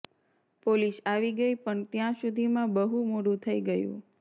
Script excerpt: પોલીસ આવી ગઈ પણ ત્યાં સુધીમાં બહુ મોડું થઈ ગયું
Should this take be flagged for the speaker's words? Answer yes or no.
no